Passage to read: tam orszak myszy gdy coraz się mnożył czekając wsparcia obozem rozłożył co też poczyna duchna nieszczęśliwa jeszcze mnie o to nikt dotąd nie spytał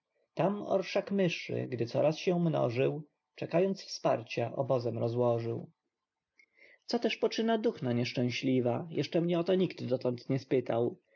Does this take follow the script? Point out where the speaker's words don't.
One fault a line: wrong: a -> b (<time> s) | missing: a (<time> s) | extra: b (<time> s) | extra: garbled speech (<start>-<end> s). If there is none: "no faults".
no faults